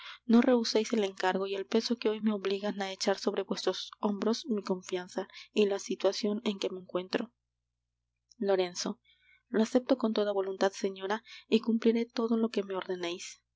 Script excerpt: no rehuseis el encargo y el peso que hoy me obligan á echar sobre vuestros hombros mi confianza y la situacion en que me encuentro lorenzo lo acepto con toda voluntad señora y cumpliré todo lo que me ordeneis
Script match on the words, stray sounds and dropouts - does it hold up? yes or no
yes